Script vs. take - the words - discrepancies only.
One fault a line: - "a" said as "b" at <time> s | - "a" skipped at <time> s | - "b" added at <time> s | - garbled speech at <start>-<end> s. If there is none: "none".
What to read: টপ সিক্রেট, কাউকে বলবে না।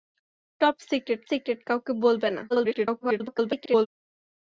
- "সিক্রেট" added at 1.3 s
- garbled speech at 2.5-3.9 s